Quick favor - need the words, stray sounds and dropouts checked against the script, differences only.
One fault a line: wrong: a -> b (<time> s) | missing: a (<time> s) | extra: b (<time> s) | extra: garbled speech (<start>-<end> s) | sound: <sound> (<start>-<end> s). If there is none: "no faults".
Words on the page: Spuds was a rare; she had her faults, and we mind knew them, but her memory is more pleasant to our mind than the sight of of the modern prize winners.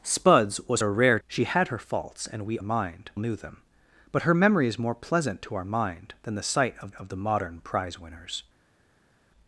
no faults